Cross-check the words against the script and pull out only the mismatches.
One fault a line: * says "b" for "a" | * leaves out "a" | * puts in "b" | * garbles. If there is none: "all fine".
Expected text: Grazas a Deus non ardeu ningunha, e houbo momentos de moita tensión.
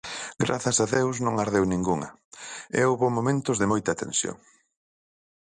all fine